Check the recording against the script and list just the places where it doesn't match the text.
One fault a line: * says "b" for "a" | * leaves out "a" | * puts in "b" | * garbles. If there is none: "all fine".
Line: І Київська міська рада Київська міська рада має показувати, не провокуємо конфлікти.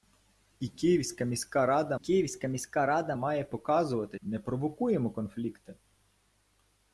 all fine